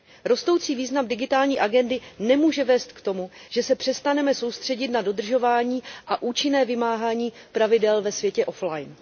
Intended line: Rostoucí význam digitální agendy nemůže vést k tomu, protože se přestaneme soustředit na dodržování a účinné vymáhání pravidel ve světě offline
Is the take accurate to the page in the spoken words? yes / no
no